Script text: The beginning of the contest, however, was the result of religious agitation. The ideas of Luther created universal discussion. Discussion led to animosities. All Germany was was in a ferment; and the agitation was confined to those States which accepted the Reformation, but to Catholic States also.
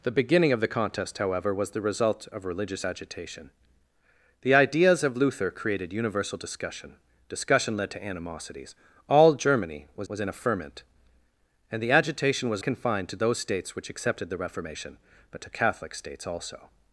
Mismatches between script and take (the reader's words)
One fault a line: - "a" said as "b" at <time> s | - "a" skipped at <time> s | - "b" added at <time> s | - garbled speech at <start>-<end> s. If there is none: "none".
none